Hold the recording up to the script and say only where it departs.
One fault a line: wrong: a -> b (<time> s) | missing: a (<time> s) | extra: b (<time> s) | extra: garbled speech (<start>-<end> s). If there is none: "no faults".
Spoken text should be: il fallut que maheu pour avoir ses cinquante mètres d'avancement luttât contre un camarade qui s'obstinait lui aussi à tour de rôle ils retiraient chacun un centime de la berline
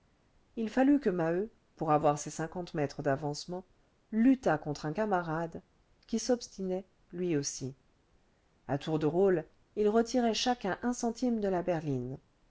no faults